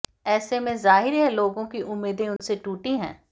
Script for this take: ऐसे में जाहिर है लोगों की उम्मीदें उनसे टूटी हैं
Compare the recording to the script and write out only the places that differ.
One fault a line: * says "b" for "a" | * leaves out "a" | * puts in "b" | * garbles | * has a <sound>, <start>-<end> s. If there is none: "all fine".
* has a dropout, 2.4-2.4 s